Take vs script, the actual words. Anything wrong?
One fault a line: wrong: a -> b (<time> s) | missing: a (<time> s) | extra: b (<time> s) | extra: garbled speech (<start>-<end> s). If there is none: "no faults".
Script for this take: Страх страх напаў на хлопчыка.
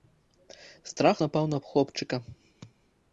missing: страх (1.2 s)